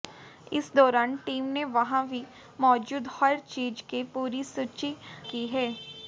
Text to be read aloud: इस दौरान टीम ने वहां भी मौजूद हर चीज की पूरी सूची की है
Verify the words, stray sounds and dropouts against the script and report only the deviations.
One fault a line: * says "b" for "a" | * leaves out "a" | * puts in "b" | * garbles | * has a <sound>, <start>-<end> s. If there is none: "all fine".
all fine